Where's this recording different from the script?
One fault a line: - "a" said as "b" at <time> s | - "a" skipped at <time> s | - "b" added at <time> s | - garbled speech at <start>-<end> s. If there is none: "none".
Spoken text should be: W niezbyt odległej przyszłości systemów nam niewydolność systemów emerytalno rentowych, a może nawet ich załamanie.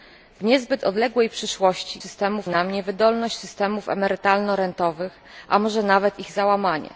none